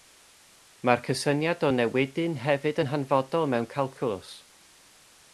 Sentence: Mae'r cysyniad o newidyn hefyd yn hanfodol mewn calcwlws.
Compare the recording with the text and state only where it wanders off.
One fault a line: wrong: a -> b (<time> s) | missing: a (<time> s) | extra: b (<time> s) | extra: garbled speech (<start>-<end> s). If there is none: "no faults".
no faults